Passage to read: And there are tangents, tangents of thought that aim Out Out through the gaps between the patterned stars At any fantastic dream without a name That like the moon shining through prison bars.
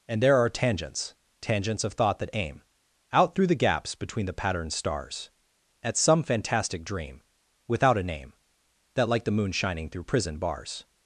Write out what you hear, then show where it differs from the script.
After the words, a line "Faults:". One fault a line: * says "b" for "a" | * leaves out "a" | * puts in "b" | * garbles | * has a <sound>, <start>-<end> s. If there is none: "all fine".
And there are tangents, tangents of thought that aim Out through the gaps between the patterned stars At some fantastic dream without a name That like the moon shining through prison bars.
Faults:
* leaves out "Out"
* says "some" for "any"